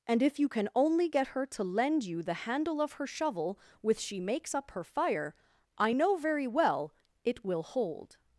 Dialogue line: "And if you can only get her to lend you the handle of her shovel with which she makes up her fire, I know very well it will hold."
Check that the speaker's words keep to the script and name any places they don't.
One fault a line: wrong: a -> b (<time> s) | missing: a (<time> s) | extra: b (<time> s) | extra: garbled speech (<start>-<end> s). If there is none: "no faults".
missing: which (4.0 s)